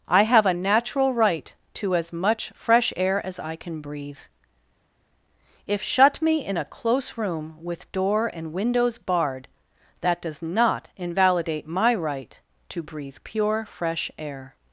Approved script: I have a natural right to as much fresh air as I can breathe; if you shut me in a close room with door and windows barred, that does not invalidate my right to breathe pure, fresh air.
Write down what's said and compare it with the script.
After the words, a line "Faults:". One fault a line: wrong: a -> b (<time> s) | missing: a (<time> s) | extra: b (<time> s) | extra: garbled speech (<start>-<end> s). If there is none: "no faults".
I have a natural right to as much fresh air as I can breathe; if shut me in a close room with door and windows barred, that does not invalidate my right to breathe pure, fresh air.
Faults:
missing: you (5.8 s)